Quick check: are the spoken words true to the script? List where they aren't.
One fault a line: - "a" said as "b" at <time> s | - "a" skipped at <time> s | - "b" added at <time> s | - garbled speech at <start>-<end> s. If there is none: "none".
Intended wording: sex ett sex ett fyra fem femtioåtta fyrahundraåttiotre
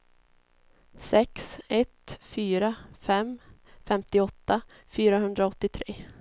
- "sex ett" skipped at 2.2 s